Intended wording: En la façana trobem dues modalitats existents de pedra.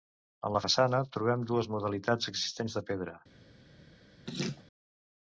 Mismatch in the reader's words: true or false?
false